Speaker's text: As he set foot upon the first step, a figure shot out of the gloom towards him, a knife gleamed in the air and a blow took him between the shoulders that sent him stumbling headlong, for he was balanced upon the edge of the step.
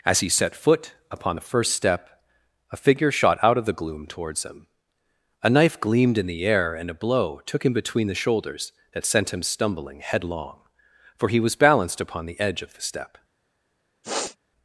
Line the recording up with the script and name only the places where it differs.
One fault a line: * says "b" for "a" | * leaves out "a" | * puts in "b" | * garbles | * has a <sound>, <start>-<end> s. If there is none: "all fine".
* has a sniff, 14.0-14.4 s